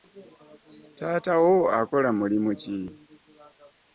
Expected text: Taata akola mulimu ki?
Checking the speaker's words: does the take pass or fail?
fail